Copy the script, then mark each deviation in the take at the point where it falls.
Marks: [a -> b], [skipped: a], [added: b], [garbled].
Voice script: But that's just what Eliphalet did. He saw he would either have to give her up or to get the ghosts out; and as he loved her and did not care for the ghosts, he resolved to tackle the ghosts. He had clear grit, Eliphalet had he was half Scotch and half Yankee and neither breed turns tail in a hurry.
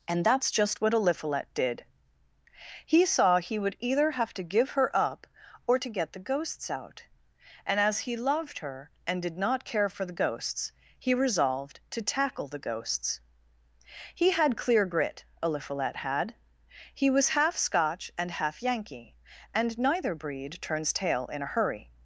[But -> And] that's just what Eliphalet did. He saw he would either have to give her up or to get the ghosts out; and as he loved her and did not care for the ghosts, he resolved to tackle the ghosts. He had clear grit, Eliphalet had he was half Scotch and half Yankee and neither breed turns tail in a hurry.